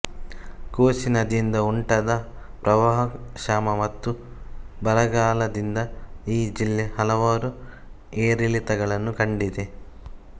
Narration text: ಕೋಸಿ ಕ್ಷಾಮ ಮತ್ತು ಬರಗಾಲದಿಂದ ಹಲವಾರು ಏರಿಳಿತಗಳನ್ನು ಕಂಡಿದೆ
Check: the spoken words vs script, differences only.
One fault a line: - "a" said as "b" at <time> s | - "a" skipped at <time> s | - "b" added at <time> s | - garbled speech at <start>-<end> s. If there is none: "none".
- "ನದಿಯಿಂದ ಉಂಟಾದ ಪ್ರವಾಹ" added at 1.1 s
- "ಈ ಜಿಲ್ಲೆ" added at 6.3 s